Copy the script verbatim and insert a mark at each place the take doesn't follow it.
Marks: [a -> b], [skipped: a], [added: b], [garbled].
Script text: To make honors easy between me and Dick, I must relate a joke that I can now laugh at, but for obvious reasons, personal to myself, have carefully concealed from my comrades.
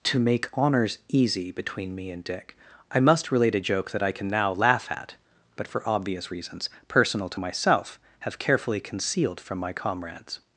To make honors easy between me and Dick, I must relate a joke that I can now laugh at, but for obvious reasons, personal to myself, have carefully concealed from my comrades.